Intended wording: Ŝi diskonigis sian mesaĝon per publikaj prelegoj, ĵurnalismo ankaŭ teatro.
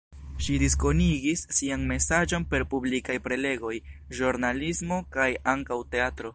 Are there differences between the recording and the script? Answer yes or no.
yes